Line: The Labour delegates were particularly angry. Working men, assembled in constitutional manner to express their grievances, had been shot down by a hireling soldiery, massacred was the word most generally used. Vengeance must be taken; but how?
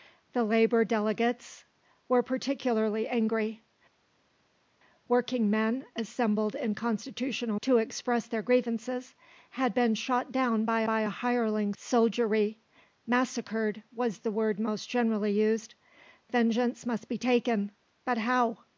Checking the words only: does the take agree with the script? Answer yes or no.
no